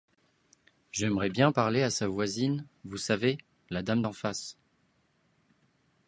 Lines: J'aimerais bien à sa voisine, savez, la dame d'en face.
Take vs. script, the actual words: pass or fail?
fail